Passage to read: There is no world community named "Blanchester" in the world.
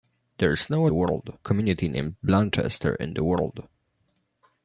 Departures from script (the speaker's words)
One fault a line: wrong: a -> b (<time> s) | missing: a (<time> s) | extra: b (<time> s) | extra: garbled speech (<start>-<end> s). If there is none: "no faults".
no faults